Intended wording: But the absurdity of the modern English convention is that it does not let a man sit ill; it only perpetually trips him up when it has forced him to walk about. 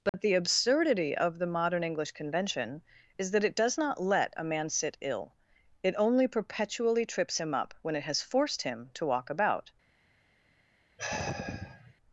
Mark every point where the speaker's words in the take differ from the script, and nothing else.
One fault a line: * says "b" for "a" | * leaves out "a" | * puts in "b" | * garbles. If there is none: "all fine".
all fine